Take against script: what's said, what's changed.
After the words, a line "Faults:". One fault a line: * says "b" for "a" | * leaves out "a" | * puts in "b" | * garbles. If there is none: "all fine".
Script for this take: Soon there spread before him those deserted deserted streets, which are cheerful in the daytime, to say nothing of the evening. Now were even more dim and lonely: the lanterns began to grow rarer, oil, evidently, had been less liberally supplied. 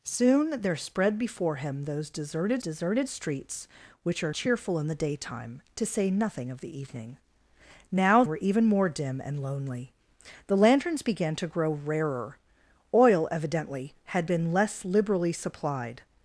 Soon there spread before him those deserted deserted streets, which are cheerful in the daytime, to say nothing of the evening. Now were even more dim and lonely: the lanterns began to grow rarer, oil, evidently, had been less liberally supplied.
Faults:
all fine